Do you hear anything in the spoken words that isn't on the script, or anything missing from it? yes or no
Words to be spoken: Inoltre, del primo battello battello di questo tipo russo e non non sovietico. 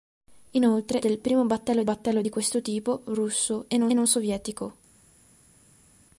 no